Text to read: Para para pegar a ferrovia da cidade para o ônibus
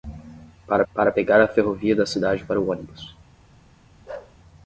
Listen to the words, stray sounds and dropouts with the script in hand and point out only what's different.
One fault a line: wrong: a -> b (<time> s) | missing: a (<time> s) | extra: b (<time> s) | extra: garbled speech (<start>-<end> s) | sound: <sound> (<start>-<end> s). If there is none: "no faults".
sound: bark (4.1-4.4 s)